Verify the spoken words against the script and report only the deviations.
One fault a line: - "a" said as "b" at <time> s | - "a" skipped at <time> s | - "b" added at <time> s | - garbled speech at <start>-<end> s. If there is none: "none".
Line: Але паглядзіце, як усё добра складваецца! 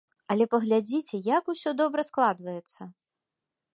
none